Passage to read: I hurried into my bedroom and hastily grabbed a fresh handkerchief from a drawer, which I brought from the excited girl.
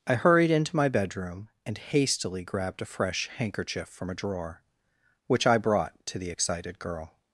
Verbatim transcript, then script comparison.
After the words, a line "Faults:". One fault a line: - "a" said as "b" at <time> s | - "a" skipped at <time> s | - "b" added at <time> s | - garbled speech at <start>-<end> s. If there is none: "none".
I hurried into my bedroom and hastily grabbed a fresh handkerchief from a drawer, which I brought to the excited girl.
Faults:
- "from" said as "to" at 6.1 s